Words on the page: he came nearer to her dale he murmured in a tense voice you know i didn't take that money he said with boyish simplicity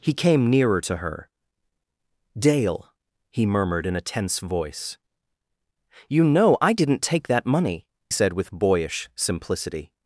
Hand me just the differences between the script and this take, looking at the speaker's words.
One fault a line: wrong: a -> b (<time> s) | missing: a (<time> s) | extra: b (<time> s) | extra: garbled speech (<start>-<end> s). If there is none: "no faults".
missing: he (7.8 s)